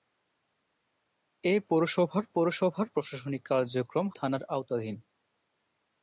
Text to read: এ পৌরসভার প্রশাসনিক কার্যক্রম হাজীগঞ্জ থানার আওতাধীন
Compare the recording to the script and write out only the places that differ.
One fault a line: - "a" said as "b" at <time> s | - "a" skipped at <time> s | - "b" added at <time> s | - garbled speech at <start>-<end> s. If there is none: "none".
- "পৌরসভার" added at 2.3 s
- "হাজীগঞ্জ" skipped at 4.1 s